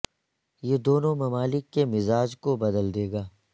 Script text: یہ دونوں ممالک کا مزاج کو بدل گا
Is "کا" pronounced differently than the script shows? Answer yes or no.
yes